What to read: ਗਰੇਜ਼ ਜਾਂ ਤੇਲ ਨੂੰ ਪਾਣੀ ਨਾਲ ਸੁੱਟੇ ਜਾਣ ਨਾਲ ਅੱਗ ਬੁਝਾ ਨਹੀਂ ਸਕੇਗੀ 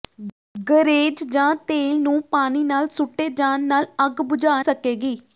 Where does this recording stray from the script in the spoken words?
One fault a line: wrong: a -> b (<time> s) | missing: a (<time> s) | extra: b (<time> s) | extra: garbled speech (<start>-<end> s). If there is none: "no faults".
missing: ਨਹੀਂ (4.6 s)